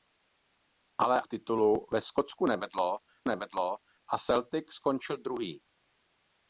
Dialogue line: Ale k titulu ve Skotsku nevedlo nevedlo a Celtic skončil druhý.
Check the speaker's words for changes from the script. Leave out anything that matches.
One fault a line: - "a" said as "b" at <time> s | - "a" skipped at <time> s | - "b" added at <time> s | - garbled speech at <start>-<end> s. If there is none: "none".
none